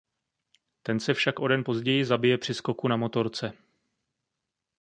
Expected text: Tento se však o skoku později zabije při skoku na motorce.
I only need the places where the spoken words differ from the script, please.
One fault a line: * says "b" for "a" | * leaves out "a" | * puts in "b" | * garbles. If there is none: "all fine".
* says "Ten" for "Tento"
* says "den" for "skoku"